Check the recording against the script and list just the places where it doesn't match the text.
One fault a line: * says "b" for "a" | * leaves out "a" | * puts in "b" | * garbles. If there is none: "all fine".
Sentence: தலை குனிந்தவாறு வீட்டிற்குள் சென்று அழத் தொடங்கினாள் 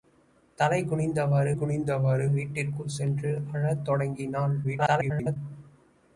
* puts in "குனிந்தவாறு"
* garbles